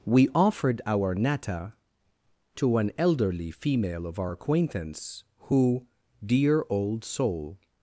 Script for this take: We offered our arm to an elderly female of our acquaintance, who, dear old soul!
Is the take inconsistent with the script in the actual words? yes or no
yes